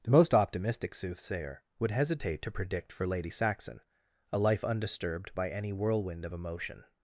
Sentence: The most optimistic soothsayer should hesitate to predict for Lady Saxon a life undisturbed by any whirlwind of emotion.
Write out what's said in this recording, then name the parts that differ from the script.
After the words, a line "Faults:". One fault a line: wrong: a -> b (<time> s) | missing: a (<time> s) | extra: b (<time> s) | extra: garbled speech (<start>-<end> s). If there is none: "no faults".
The most optimistic soothsayer would hesitate to predict for Lady Saxon a life undisturbed by any whirlwind of emotion.
Faults:
wrong: should -> would (1.8 s)